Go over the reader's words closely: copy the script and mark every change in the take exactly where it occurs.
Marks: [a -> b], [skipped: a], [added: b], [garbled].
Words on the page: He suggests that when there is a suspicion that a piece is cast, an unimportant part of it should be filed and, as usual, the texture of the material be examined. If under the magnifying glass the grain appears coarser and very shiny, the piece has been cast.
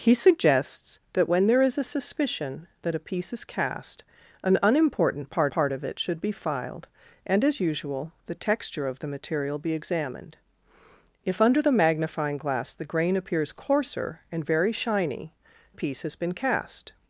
He suggests that when there is a suspicion that a piece is cast, an unimportant part [added: part] of it should be filed and, as usual, the texture of the material be examined. If under the magnifying glass the grain appears coarser and very shiny, [skipped: the] piece has been cast.